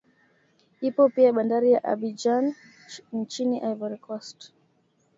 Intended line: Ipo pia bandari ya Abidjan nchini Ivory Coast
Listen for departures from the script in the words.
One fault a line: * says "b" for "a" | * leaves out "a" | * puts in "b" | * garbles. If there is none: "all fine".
all fine